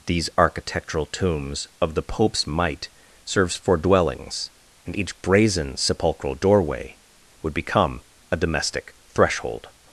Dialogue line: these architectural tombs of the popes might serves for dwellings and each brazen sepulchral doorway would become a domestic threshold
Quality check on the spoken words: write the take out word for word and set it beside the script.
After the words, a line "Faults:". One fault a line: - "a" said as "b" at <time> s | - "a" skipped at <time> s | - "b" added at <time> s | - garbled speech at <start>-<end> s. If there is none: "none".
these architectural tombs of the popes might serves for dwellings and each brazen sepulchral doorway would become a domestic threshold
Faults:
none